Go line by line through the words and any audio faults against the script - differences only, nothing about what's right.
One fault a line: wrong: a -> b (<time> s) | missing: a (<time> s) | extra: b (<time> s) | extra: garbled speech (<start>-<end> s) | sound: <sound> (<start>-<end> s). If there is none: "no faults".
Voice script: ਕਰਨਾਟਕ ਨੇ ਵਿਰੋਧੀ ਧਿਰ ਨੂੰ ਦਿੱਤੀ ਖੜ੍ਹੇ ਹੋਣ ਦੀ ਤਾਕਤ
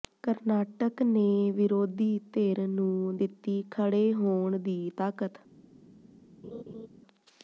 sound: laugh (6.4-6.9 s)